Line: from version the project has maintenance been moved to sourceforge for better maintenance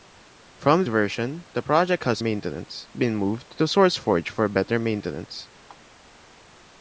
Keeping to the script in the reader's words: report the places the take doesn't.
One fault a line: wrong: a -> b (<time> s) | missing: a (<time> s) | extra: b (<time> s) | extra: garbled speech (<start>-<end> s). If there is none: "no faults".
no faults